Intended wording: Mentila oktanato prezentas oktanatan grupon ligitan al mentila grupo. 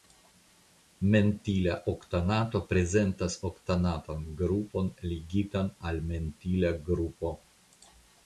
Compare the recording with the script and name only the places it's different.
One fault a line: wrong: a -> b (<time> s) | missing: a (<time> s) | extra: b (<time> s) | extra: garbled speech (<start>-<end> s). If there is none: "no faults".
no faults